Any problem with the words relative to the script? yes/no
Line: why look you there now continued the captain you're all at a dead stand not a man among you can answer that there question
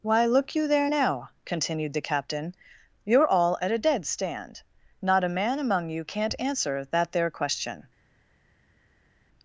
yes